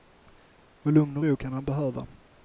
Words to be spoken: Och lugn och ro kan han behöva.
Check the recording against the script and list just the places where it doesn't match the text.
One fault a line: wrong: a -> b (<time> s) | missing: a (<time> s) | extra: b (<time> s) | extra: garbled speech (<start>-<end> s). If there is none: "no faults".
no faults